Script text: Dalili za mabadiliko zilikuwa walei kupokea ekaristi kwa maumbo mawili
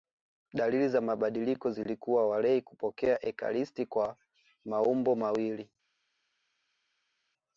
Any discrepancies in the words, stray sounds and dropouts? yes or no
no